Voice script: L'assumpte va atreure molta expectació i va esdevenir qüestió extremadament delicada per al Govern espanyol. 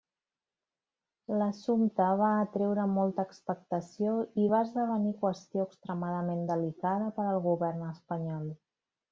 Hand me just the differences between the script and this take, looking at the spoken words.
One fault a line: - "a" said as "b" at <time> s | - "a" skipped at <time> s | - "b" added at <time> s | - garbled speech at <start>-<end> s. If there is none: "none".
none